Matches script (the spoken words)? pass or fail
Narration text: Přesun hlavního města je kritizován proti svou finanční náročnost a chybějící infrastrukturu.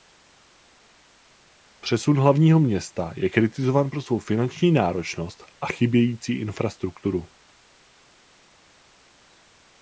fail